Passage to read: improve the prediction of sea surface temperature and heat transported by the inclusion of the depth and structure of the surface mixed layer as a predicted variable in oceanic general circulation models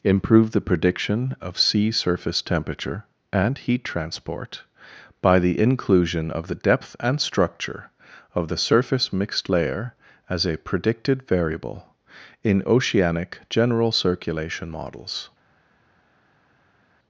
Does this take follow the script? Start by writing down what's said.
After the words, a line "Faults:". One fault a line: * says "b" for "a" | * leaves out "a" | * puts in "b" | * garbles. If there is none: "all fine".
improve the prediction of sea surface temperature and heat transport by the inclusion of the depth and structure of the surface mixed layer as a predicted variable in oceanic general circulation models
Faults:
* says "transport" for "transported"